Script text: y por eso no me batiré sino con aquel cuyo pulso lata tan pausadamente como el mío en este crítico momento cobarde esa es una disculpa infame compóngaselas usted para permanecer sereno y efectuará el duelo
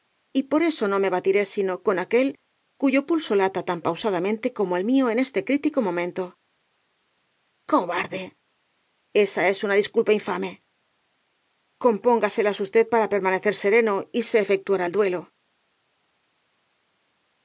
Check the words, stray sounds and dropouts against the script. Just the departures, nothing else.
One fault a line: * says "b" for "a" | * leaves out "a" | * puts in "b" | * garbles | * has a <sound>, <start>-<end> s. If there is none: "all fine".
* puts in "se"